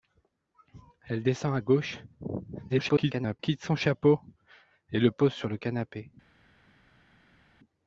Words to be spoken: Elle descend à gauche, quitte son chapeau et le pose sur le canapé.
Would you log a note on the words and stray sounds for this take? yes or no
yes